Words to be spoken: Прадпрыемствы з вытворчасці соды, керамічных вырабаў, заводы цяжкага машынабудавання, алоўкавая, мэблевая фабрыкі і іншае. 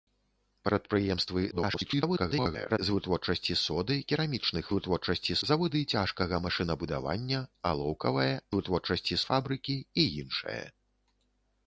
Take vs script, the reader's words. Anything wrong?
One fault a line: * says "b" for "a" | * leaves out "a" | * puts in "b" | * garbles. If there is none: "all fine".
* garbles
* says "вытворчасці" for "вырабаў"
* says "вытворчасці" for "мэблевая"